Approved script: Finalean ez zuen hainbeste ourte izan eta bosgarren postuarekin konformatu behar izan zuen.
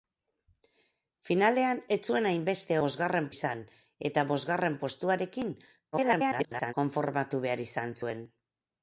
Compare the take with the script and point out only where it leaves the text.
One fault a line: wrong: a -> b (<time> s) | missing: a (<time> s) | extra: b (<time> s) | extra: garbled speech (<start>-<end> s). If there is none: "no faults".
wrong: ourte -> bosgarren (2.8 s)
extra: garbled speech (5.9-6.7 s)